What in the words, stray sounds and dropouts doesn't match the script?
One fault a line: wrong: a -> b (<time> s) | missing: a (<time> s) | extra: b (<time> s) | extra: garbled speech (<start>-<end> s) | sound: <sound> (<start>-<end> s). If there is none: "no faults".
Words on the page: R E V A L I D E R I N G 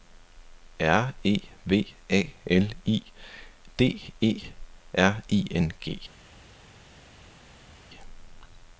no faults